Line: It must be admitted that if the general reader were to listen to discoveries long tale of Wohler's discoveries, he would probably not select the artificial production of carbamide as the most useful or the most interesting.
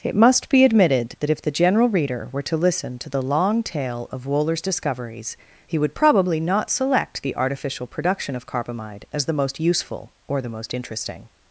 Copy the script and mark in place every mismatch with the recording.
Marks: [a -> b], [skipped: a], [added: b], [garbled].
It must be admitted that if the general reader were to listen to [discoveries -> the] long tale of Wohler's discoveries, he would probably not select the artificial production of carbamide as the most useful or the most interesting.